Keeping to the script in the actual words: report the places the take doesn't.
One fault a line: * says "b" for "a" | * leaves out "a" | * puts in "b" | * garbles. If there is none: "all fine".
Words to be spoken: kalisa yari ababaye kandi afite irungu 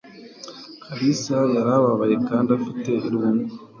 all fine